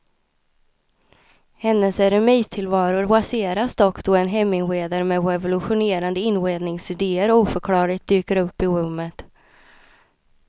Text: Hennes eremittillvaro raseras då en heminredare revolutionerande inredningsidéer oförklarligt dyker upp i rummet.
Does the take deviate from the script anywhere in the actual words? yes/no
yes